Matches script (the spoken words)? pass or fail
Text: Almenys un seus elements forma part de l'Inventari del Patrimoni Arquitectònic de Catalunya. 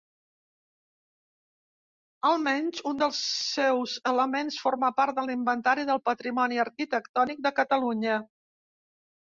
fail